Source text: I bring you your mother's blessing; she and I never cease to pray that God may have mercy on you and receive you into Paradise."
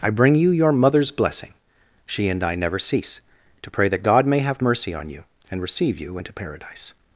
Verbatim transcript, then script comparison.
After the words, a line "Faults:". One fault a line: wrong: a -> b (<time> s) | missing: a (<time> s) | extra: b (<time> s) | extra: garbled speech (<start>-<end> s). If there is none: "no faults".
I bring you your mother's blessing; she and I never cease to pray that God may have mercy on you and receive you into Paradise."
Faults:
no faults